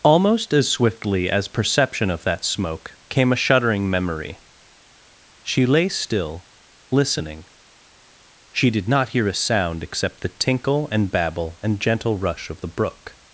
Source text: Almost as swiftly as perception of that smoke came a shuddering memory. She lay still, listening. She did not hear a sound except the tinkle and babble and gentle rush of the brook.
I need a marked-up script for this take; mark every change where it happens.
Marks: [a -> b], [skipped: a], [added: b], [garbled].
Almost as swiftly as perception of that smoke came a shuddering memory. She lay still, listening. She did not hear a sound except the tinkle and babble and gentle rush of the brook.